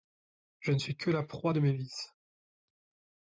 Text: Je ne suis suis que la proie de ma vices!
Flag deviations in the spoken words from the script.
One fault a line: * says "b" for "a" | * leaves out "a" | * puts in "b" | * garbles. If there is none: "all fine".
* leaves out "suis"
* says "mes" for "ma"